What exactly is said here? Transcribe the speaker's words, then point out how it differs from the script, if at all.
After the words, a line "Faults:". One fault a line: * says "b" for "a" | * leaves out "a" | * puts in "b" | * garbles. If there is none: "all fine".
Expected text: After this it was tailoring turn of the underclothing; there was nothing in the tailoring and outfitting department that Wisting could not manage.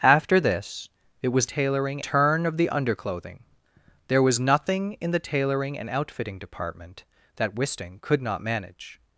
After this it was tailoring turn of the underclothing; there was nothing in the tailoring and outfitting department that Wisting could not manage.
Faults:
all fine